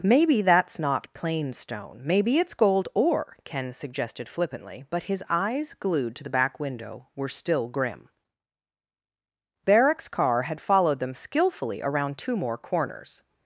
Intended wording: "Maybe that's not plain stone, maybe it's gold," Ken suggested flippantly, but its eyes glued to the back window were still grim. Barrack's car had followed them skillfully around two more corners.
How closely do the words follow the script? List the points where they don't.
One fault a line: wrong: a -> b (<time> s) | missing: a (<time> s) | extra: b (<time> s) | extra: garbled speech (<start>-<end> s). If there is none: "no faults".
extra: ore (3.0 s)
wrong: its -> his (5.0 s)